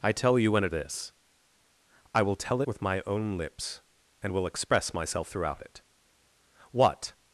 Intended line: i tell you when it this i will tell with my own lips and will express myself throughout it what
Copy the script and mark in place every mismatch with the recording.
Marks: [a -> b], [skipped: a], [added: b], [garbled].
i tell you when it this i will tell with my own lips and will express myself throughout it what